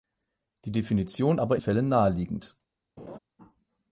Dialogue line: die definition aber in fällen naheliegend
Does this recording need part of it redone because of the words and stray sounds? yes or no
yes